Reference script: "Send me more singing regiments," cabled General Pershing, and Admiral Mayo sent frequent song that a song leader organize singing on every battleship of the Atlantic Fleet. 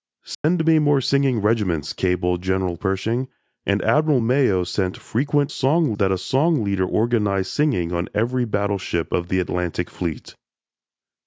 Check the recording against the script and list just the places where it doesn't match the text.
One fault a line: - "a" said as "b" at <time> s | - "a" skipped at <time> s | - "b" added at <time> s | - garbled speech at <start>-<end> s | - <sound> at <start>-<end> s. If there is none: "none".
- dropout at 0.3-0.4 s